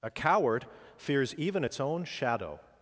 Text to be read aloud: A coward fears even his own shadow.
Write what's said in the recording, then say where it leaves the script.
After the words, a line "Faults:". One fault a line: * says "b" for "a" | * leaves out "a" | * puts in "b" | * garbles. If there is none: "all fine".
A coward fears even its own shadow.
Faults:
* says "its" for "his"